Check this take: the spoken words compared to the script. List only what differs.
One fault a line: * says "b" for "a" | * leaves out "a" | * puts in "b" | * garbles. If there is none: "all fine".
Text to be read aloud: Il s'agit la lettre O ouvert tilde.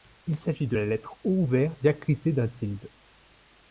* puts in "de"
* puts in "diacritée d'un"